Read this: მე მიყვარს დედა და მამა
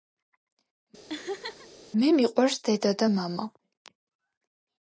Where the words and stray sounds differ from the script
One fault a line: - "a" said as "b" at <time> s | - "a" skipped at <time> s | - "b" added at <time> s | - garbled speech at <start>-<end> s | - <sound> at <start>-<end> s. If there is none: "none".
- laugh at 1.1-1.7 s